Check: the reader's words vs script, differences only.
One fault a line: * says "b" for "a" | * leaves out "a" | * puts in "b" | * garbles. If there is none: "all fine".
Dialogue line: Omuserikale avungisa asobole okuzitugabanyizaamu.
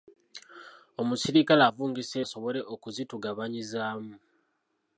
all fine